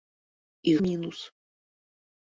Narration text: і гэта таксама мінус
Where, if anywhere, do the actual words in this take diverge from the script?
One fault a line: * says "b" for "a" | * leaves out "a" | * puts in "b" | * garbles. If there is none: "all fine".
* leaves out "гэта таксама"